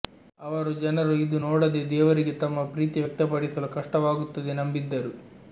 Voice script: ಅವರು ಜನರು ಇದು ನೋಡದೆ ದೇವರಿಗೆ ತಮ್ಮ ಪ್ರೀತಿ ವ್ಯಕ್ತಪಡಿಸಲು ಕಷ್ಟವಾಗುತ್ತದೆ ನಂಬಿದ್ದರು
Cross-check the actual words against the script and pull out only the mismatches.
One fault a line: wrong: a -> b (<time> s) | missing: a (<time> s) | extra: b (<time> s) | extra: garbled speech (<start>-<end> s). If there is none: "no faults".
no faults